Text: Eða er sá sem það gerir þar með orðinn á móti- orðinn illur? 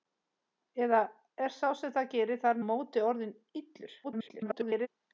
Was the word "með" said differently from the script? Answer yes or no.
yes